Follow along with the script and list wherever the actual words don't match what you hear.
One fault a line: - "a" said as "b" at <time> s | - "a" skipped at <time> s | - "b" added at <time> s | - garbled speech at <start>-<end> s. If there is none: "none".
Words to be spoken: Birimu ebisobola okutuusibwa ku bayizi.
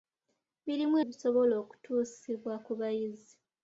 none